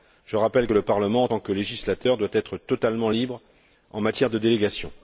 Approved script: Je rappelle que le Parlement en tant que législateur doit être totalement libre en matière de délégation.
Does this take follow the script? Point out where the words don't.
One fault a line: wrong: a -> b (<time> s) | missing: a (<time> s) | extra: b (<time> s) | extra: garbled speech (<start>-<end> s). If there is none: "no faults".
no faults